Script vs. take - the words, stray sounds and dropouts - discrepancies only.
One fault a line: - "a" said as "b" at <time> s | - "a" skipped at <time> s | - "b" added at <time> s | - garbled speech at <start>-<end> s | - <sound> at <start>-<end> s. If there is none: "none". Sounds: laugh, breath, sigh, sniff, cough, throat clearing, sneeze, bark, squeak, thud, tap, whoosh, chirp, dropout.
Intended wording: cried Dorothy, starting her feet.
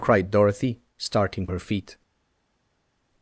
none